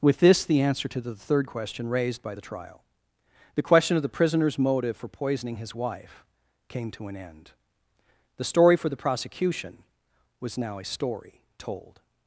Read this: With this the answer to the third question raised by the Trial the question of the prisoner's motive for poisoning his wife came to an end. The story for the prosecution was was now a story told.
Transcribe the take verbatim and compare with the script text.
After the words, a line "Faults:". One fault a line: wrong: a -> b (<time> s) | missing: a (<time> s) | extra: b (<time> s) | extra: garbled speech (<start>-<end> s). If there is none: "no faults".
With this the answer to the third question raised by the Trial the question of the prisoner's motive for poisoning his wife came to an end. The story for the prosecution was now a story told.
Faults:
missing: was (10.6 s)